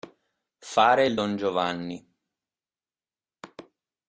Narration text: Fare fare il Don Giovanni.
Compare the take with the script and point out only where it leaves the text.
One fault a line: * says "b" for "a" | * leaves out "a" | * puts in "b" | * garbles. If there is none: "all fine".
* leaves out "fare"